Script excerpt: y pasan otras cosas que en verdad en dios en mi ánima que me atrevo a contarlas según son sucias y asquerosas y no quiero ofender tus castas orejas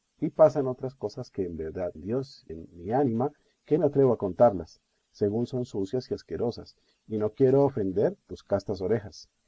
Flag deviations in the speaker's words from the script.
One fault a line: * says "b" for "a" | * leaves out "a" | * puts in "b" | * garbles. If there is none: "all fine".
all fine